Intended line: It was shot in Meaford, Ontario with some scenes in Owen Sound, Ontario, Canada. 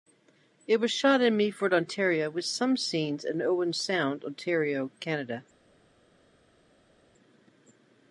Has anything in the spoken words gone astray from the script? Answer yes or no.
no